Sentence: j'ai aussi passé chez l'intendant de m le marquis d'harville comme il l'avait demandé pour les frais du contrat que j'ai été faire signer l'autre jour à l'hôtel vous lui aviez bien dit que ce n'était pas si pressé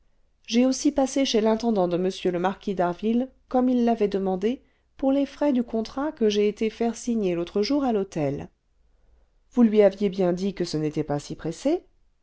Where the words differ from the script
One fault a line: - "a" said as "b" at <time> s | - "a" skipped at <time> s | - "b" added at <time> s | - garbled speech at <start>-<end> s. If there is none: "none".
none